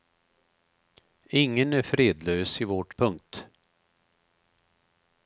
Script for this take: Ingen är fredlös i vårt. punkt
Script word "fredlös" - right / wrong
right